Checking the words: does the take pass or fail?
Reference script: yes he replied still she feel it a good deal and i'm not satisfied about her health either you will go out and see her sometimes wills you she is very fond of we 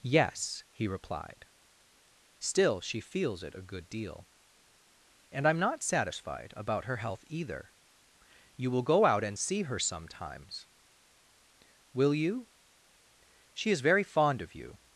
fail